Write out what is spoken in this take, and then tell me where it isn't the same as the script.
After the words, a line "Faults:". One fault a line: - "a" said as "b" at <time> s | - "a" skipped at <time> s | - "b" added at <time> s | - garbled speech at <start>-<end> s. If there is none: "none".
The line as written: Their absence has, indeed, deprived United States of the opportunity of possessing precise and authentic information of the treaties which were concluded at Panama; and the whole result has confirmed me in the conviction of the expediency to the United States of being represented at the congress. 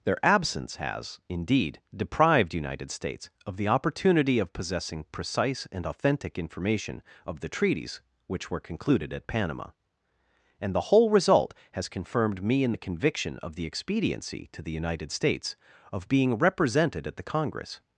Their absence has, indeed, deprived United States of the opportunity of possessing precise and authentic information of the treaties which were concluded at Panama; and the whole result has confirmed me in the conviction of the expediency to the United States of being represented at the congress.
Faults:
none